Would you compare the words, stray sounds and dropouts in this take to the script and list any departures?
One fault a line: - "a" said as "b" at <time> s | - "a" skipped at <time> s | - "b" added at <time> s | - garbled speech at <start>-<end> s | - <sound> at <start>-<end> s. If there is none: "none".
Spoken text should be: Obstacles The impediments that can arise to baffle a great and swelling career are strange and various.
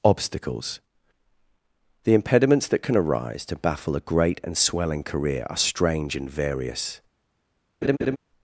- laugh at 7.8-8.2 s